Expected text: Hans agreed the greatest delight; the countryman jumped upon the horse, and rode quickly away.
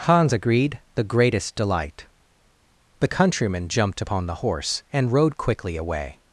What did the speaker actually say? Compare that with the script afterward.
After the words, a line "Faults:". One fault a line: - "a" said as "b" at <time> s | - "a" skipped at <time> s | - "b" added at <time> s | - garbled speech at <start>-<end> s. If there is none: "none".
Hans agreed the greatest delight; the countryman jumped upon the horse, and rode quickly away.
Faults:
none